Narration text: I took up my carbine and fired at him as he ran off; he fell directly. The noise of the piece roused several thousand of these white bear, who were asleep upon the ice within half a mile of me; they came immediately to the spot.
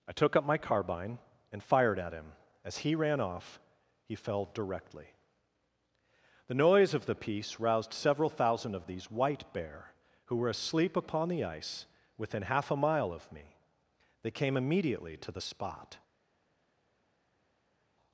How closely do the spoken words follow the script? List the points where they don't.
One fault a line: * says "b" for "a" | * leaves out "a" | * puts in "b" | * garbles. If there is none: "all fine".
all fine